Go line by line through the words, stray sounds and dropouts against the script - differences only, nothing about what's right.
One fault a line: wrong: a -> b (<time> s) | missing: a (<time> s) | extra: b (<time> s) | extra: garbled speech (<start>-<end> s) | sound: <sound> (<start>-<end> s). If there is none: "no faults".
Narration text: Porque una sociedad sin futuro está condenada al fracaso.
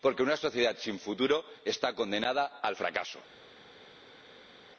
no faults